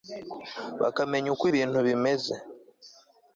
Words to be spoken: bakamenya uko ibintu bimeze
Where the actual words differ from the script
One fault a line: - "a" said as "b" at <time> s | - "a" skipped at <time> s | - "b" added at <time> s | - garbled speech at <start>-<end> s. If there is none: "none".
none